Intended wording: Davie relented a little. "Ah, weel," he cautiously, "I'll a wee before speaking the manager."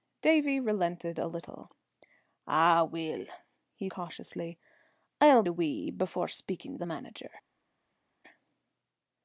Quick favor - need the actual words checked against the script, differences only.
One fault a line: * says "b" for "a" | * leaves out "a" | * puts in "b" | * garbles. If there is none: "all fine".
all fine